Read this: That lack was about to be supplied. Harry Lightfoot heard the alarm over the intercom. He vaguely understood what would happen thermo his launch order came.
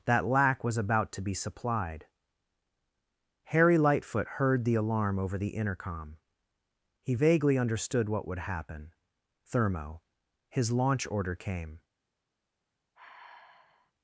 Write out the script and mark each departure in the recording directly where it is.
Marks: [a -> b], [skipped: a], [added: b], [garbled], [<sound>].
That lack was about to be supplied. Harry Lightfoot heard the alarm over the intercom. He vaguely understood what would happen thermo his launch order came. [sigh]